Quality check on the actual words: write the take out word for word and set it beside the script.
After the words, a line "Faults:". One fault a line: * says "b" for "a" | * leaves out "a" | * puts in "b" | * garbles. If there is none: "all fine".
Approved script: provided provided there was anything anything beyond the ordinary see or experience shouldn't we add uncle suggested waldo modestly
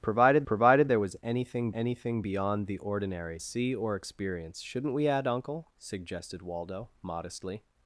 provided provided there was anything anything beyond the ordinary see or experience shouldn't we add uncle suggested waldo modestly
Faults:
all fine